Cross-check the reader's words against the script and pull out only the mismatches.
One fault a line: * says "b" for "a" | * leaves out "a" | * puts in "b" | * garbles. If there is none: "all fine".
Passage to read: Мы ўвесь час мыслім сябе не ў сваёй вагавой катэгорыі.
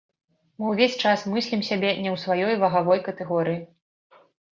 all fine